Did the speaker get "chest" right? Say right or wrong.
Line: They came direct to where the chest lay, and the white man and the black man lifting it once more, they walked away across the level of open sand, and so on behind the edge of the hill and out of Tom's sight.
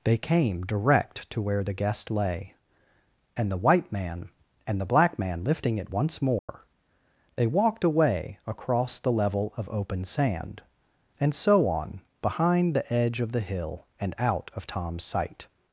wrong